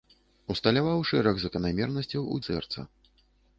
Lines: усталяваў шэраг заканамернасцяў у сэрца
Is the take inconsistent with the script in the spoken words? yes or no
no